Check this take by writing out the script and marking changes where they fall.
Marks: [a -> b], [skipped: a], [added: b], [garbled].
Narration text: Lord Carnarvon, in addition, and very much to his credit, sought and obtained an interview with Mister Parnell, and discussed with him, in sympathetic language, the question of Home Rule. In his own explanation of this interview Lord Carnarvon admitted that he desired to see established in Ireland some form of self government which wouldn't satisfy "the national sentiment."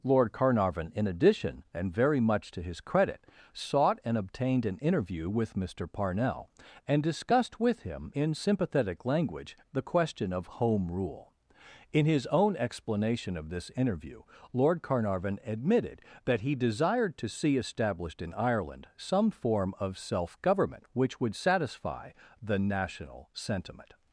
Lord Carnarvon, in addition, and very much to his credit, sought and obtained an interview with Mister Parnell, and discussed with him, in sympathetic language, the question of Home Rule. In his own explanation of this interview Lord Carnarvon admitted that he desired to see established in Ireland some form of self government which [wouldn't -> would] satisfy "the national sentiment."